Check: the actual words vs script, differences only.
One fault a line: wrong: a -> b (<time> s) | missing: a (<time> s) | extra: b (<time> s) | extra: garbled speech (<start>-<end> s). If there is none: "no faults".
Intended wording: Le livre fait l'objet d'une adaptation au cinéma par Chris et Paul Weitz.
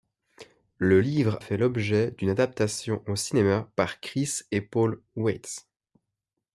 no faults